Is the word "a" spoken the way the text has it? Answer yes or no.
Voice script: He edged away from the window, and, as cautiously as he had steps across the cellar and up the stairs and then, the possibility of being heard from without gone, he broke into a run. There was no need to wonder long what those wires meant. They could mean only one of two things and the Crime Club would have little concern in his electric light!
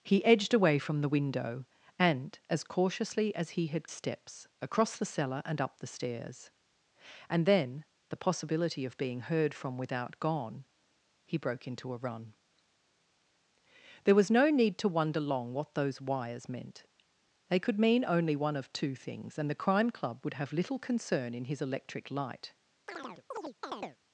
yes